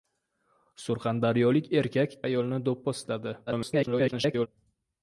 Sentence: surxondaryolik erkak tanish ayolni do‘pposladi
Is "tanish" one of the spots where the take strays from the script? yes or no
yes